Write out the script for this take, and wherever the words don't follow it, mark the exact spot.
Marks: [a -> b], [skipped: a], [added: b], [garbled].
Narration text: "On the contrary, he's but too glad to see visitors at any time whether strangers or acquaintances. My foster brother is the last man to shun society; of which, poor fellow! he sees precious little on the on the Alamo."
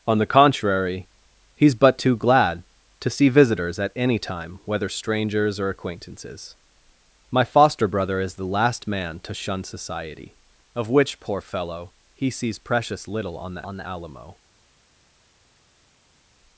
"On the contrary, he's but too glad to see visitors at any time whether strangers or acquaintances. My foster brother is the last man to shun society; of which, poor fellow! he sees precious little on the on the Alamo."